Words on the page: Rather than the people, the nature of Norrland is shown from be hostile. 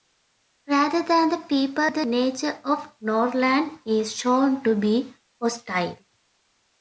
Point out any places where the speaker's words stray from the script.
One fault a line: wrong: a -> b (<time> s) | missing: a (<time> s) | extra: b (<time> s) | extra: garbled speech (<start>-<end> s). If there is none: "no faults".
wrong: from -> to (4.6 s)